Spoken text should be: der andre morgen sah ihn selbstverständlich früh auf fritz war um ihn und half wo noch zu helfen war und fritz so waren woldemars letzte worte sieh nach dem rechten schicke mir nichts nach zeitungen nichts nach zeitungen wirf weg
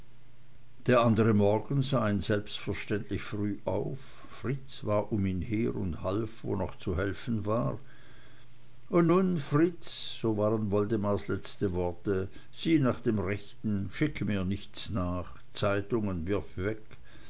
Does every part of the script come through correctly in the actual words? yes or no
no